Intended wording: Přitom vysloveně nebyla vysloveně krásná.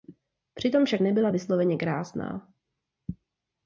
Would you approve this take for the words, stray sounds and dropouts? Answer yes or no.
no